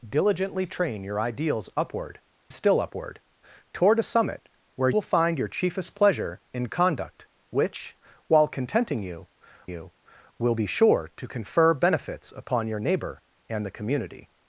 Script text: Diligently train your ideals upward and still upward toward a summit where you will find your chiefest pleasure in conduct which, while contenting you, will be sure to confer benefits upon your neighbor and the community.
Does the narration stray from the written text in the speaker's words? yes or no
yes